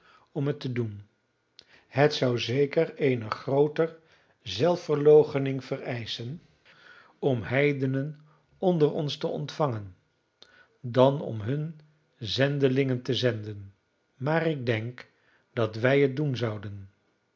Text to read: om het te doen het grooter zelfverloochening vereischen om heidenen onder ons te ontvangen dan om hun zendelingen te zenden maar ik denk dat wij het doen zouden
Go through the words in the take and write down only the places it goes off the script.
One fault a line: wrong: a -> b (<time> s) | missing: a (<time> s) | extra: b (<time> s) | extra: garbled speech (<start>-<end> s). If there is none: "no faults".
extra: zou zeker eene (2.1 s)